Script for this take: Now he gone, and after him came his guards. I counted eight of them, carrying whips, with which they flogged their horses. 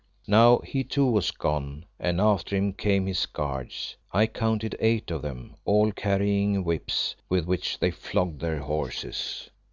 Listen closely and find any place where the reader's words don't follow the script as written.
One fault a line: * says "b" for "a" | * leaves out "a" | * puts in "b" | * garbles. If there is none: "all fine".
* puts in "too was"
* puts in "all"